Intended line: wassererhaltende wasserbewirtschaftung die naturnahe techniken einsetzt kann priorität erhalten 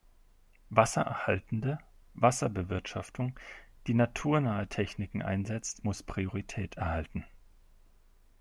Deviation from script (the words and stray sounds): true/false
true